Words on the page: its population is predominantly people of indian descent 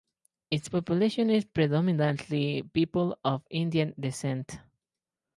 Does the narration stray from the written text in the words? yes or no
no